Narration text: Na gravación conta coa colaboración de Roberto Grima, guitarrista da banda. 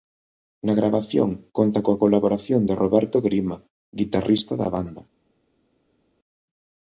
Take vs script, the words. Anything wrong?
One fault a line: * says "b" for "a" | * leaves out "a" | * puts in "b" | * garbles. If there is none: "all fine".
all fine